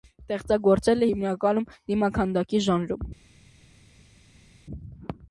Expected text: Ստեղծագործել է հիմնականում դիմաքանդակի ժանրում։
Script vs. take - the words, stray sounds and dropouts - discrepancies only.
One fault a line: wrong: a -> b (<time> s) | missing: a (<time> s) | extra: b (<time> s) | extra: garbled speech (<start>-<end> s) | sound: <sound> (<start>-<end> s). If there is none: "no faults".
no faults